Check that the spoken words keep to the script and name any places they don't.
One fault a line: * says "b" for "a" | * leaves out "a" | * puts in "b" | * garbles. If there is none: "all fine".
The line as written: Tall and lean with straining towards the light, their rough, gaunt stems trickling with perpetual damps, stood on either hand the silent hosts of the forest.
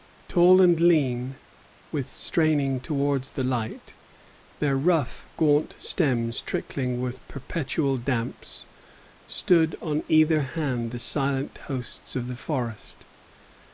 all fine